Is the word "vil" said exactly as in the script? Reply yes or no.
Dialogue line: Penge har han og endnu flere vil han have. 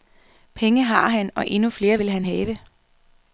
yes